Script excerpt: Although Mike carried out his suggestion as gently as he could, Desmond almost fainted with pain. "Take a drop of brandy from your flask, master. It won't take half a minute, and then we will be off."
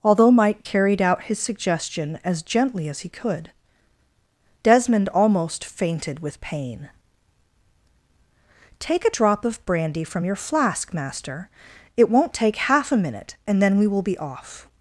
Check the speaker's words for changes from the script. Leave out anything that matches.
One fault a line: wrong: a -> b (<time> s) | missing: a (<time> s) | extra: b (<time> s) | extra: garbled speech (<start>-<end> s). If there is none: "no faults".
no faults